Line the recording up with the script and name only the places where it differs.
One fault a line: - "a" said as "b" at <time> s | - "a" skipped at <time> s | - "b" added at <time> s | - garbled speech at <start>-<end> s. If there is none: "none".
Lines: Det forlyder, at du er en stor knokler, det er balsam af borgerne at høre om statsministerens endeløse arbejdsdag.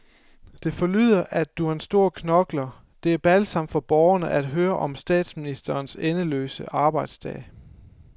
- "af" said as "for" at 3.7 s